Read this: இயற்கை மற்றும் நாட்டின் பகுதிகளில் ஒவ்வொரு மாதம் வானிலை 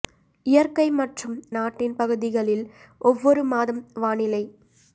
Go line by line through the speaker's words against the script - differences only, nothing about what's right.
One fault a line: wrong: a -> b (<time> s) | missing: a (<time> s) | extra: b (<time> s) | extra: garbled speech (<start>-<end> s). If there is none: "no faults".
no faults